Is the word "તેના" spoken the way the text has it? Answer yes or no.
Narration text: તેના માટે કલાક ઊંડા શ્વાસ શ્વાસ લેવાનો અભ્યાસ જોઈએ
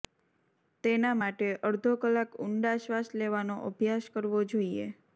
yes